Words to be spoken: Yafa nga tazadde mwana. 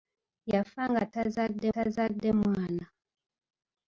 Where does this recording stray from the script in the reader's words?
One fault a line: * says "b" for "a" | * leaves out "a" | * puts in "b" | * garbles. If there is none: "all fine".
* puts in "tazadde"